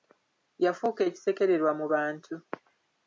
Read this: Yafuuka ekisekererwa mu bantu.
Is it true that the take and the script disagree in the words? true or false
false